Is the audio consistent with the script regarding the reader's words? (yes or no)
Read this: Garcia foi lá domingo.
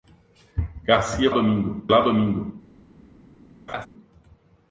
no